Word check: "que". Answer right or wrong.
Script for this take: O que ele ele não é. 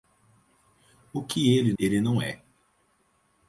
right